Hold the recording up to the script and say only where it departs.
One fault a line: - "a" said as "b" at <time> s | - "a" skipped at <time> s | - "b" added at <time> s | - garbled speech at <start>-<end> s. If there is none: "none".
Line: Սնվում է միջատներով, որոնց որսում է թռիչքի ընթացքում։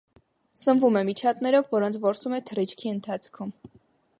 none